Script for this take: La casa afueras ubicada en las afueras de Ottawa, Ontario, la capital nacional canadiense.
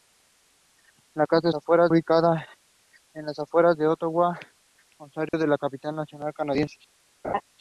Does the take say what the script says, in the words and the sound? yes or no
no